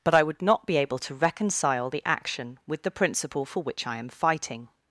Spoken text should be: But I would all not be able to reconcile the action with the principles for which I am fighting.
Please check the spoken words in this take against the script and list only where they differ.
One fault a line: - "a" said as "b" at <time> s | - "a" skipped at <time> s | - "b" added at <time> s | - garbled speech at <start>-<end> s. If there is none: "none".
- "all" skipped at 0.4 s
- "principles" said as "principle" at 2.9 s